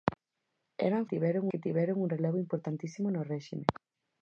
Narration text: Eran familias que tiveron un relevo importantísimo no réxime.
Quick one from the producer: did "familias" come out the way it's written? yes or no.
no